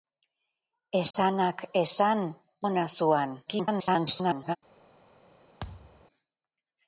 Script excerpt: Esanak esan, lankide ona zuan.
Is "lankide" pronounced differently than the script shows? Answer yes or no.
yes